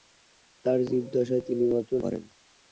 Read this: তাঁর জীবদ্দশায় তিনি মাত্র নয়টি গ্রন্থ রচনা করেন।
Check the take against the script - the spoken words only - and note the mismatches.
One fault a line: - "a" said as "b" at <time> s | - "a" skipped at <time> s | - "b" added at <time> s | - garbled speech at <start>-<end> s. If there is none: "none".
- "নয়টি গ্রন্থ রচনা" skipped at 1.9 s